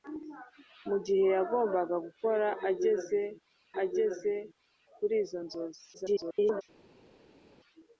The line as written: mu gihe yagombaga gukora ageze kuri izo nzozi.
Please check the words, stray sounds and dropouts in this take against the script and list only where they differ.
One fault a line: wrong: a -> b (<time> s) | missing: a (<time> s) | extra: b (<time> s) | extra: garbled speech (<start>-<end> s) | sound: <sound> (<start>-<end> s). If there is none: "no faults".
extra: ageze (3.8 s)
extra: garbled speech (5.9-6.6 s)